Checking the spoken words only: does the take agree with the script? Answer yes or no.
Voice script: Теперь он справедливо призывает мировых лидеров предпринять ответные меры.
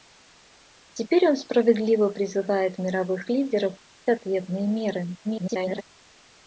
no